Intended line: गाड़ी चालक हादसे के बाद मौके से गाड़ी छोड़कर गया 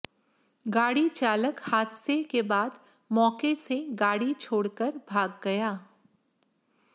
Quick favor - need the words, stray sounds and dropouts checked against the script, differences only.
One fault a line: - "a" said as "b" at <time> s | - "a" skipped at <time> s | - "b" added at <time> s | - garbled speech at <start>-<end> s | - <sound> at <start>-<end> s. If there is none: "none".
- "भाग" added at 5.1 s